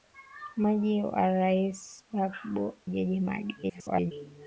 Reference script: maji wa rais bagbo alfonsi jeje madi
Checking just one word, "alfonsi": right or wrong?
wrong